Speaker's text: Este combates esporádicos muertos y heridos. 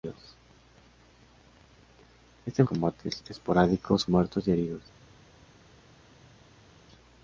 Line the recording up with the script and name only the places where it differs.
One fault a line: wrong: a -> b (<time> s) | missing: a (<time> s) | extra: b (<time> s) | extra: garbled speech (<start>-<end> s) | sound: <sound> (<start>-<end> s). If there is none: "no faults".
no faults